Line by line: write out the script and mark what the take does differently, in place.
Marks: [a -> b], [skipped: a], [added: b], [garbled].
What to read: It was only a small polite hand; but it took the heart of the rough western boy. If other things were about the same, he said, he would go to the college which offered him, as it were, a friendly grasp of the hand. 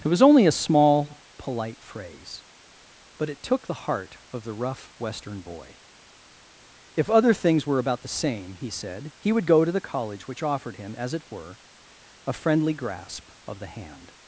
It was only a small polite [hand; -> phrase] but it took the heart of the rough western boy. If other things were about the same, he said, he would go to the college which offered him, as it were, a friendly grasp of the hand.